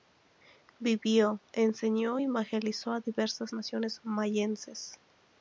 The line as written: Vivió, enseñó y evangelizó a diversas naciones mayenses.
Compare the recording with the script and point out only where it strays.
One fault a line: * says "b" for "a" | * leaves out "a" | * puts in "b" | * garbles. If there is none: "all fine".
all fine